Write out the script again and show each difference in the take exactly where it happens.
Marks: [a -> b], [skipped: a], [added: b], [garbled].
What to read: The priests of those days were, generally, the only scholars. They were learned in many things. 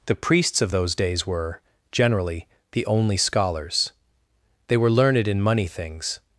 The priests of those days were, generally, the only scholars. They were learned in [many -> money] things.